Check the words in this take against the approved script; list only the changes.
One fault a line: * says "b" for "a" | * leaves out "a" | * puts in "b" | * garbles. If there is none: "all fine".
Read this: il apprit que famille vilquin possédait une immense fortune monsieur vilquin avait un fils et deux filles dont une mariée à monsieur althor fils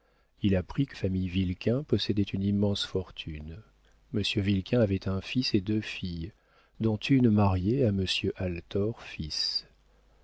all fine